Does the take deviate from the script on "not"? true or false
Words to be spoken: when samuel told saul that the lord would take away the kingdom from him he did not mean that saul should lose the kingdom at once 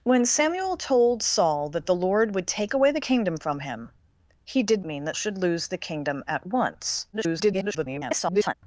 true